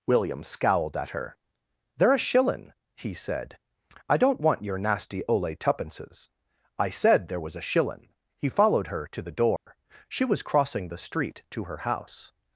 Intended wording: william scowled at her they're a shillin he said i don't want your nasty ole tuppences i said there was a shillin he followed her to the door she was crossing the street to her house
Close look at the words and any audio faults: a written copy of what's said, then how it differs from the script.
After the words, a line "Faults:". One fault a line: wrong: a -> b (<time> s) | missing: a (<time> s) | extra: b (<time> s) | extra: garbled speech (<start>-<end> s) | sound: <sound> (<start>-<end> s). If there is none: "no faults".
william scowled at her they're a shillin he said i don't want your nasty ole tuppences i said there was a shillin he followed her to the door she was crossing the street to her house
Faults:
sound: dropout (9.6-9.7 s)